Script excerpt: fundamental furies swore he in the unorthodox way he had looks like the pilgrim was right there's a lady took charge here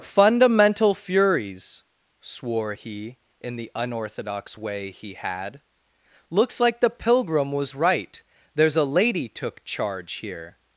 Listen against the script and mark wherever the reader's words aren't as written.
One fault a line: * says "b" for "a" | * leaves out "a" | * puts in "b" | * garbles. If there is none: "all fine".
all fine